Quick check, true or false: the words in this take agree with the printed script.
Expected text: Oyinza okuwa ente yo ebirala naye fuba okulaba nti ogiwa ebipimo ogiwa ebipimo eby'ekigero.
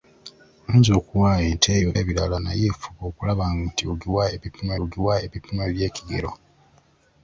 true